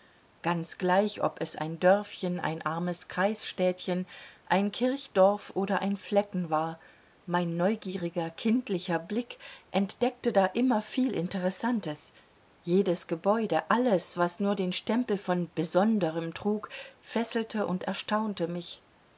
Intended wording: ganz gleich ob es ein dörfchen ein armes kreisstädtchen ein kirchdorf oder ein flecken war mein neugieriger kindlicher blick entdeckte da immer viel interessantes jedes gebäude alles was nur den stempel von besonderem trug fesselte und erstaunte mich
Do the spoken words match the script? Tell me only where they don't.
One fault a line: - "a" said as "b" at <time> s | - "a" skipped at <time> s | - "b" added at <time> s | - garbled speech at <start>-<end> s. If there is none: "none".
none